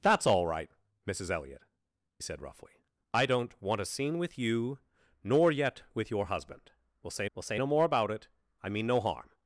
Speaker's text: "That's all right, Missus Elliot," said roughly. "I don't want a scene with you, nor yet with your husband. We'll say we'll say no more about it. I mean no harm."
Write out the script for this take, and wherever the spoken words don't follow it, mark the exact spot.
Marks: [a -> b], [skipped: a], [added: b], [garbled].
"That's all right, Missus Elliot," said roughly. "I don't want a scene with you, nor yet with your husband. We'll say we'll say no more about it. I mean no harm."